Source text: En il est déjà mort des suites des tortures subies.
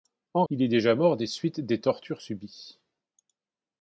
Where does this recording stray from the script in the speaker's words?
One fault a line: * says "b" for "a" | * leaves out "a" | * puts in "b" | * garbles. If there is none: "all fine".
all fine